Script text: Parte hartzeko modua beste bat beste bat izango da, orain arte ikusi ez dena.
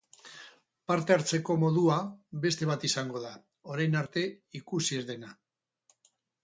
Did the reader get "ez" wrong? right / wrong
right